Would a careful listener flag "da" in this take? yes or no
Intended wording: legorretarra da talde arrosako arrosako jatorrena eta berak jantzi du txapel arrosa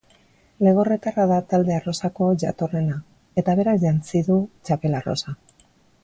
no